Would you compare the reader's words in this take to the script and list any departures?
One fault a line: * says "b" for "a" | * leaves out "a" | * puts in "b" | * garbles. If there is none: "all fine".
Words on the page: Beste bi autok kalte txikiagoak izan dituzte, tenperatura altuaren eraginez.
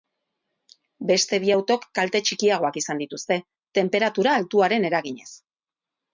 all fine